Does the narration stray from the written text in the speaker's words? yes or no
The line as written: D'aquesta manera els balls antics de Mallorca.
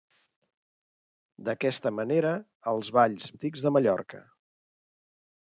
no